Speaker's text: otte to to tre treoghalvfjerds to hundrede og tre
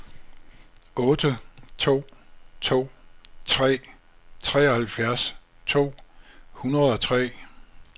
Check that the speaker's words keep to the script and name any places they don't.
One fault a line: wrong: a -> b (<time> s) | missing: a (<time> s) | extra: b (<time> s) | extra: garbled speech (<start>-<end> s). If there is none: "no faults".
no faults